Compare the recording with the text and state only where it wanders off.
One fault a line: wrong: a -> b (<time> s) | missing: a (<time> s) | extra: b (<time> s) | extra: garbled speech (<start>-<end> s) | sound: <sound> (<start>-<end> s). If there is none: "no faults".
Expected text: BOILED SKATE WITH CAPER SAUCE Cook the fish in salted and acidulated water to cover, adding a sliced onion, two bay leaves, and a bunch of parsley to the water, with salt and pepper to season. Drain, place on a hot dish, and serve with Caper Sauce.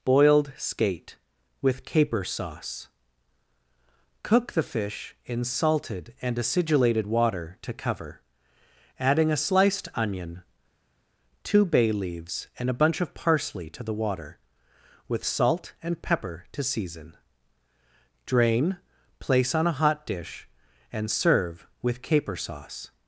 no faults